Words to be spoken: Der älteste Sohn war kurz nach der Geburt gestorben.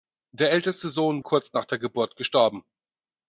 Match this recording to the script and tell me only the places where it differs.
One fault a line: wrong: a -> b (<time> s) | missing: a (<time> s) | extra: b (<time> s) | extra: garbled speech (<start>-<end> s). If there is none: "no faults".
missing: war (1.2 s)